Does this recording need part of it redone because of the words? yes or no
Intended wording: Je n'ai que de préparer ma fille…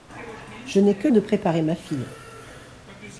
no